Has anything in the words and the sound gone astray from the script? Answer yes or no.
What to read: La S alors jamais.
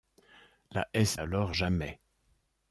no